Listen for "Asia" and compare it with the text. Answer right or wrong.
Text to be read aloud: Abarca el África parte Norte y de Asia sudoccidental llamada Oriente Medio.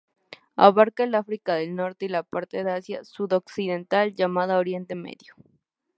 right